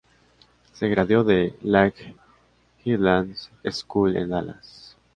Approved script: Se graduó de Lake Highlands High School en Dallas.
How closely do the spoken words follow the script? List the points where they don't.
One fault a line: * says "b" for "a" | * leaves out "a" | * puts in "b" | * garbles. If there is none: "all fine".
* leaves out "High"